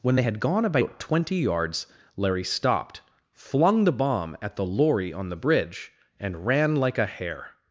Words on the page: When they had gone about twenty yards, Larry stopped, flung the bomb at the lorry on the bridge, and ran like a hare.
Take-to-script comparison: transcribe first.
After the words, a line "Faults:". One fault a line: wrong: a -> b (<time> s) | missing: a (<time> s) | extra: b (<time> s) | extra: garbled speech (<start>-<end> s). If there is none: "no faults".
When they had gone about twenty yards, Larry stopped, flung the bomb at the lorry on the bridge, and ran like a hare.
Faults:
no faults